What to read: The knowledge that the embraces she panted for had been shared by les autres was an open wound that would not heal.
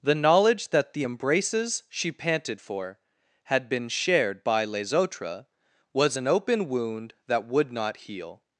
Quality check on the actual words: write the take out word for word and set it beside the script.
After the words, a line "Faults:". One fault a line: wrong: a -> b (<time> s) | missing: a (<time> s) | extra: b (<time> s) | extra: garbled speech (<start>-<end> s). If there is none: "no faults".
The knowledge that the embraces she panted for had been shared by les autres was an open wound that would not heal.
Faults:
no faults